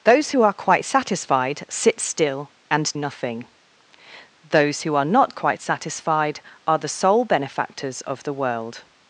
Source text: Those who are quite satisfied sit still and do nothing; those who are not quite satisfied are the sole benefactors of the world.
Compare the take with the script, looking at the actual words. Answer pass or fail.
fail